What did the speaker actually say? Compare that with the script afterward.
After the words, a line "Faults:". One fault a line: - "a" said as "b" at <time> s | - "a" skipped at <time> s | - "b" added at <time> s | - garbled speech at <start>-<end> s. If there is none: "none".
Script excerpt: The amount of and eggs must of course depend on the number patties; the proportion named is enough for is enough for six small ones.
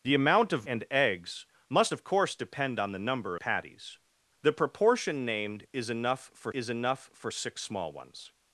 The amount of and eggs must of course depend on the number patties; the proportion named is enough for is enough for six small ones.
Faults:
none